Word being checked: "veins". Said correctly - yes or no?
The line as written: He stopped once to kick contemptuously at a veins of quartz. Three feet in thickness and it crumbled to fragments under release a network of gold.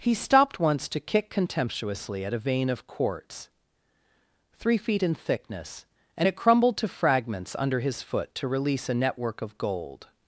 no